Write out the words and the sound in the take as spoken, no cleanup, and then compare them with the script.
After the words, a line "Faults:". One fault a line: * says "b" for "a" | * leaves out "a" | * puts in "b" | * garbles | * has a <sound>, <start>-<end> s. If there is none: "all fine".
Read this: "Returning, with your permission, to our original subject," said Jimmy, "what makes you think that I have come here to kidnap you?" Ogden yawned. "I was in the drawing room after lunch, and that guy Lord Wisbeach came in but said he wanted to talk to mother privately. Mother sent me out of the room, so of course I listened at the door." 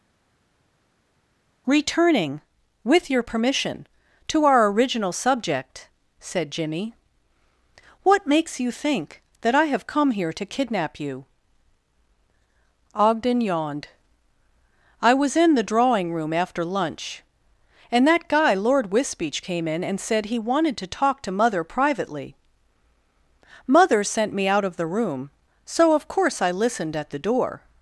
"Returning, with your permission, to our original subject," said Jimmy, "what makes you think that I have come here to kidnap you?" Ogden yawned. "I was in the drawing room after lunch, and that guy Lord Wisbeach came in and said he wanted to talk to mother privately. Mother sent me out of the room, so of course I listened at the door."
Faults:
* says "and" for "but"